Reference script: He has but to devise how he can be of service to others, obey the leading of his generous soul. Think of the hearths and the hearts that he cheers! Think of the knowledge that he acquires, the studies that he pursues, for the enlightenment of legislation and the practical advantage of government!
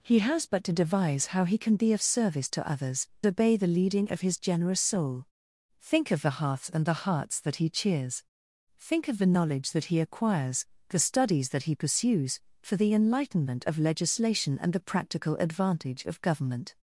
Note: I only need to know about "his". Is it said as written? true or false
true